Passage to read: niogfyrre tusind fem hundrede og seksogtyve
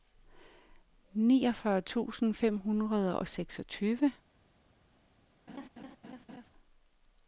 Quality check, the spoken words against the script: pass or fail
pass